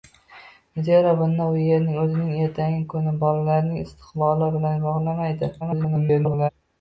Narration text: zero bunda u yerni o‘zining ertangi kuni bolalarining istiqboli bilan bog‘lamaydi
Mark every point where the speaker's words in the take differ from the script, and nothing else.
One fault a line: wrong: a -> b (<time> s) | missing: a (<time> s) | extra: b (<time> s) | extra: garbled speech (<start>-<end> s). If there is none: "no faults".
extra: garbled speech (5.6-6.5 s)